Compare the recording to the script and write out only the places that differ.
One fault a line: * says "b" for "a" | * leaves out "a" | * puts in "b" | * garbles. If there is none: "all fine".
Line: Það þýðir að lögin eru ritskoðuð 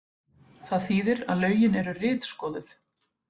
all fine